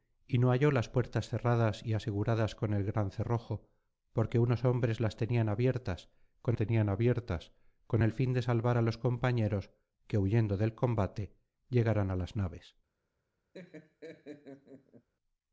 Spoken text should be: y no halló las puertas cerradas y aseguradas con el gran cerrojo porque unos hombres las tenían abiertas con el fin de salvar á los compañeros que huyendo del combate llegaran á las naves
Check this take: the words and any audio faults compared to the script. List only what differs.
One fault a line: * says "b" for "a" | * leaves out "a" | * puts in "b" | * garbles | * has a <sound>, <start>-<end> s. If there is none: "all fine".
* puts in "tenían abiertas con"
* has a laugh, 13.5-15.1 s